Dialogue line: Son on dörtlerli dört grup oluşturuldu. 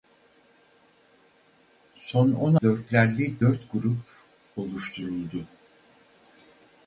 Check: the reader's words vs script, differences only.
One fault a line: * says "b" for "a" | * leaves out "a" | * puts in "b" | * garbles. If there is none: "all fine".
all fine